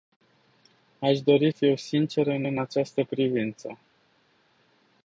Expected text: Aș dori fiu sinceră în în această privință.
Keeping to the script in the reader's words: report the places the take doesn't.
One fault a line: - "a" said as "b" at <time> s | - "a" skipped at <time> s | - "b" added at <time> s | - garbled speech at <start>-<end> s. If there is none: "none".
none